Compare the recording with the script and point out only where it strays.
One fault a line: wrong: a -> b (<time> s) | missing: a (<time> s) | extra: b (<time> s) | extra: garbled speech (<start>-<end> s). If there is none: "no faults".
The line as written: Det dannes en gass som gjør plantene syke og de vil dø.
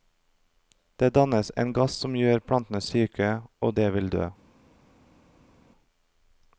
no faults